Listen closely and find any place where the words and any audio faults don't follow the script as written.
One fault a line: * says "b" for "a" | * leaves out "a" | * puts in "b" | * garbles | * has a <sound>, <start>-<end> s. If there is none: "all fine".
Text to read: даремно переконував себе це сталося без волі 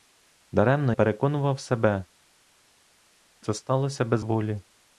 all fine